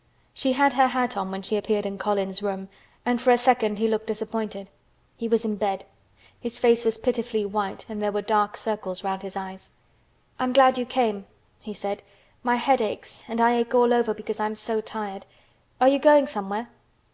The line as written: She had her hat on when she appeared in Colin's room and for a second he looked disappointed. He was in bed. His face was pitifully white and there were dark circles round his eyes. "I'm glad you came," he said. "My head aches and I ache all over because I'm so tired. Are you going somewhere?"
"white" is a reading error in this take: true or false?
false